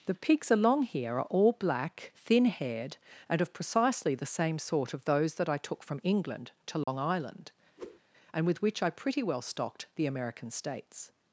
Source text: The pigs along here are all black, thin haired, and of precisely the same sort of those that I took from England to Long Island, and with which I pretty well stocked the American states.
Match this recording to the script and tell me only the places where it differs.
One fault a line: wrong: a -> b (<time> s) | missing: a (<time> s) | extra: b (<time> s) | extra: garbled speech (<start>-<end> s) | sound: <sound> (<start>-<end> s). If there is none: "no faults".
sound: dropout (6.8-6.9 s)
sound: whoosh (7.8-8.0 s)